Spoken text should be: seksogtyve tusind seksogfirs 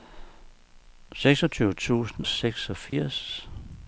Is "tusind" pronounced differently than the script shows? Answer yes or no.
no